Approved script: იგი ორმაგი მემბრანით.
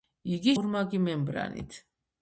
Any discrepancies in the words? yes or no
no